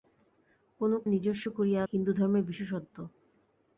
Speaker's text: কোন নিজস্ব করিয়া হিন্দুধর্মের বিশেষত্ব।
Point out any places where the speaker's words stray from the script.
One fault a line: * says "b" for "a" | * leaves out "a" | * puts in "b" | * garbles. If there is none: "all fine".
all fine